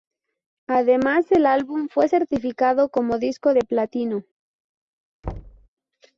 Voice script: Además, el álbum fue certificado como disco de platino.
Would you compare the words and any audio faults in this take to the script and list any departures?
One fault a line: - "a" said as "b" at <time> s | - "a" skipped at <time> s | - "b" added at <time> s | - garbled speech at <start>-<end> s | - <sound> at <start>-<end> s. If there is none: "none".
- thud at 5.2-5.7 s